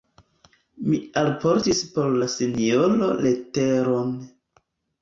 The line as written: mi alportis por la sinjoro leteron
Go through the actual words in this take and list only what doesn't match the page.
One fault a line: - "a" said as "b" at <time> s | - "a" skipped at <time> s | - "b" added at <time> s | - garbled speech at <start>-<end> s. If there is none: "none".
none